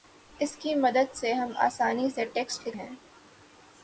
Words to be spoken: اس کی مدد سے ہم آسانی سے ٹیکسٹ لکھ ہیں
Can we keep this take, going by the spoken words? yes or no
yes